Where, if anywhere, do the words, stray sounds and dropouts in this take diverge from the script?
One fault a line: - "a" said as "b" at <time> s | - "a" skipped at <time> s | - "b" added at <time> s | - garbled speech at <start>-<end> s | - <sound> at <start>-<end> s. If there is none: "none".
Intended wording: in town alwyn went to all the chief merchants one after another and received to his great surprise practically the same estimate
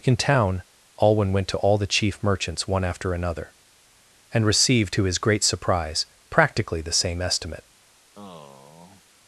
- sigh at 8.1-9.0 s